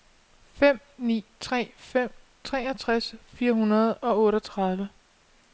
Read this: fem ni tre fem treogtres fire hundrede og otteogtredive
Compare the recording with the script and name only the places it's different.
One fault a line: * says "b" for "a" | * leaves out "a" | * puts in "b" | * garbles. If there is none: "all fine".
all fine